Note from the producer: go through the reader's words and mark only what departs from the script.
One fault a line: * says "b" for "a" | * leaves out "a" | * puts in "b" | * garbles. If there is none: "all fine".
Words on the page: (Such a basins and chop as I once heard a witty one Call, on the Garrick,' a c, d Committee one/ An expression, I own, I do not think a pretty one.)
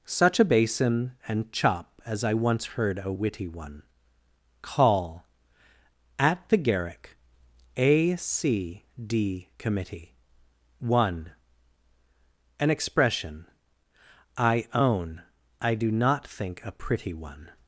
* says "basin" for "basins"
* says "at" for "on"